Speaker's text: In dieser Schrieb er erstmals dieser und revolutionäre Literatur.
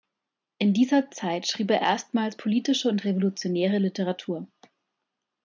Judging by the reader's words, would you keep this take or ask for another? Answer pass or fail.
fail